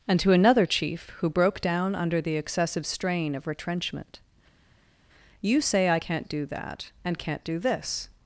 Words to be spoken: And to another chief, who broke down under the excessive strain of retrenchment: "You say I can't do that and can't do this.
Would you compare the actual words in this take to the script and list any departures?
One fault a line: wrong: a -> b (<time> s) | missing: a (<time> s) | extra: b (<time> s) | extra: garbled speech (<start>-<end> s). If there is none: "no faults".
no faults